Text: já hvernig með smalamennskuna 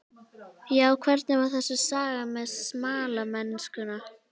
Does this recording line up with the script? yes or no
no